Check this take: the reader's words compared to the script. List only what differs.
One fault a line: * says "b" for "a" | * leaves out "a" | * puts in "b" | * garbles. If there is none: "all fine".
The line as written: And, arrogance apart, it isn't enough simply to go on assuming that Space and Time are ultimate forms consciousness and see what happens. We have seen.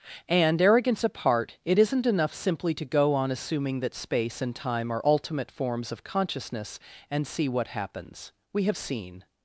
* puts in "of"